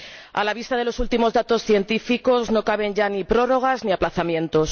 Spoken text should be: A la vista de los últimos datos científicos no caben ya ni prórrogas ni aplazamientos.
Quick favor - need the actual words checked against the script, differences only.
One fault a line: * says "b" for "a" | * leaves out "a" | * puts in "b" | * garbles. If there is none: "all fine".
all fine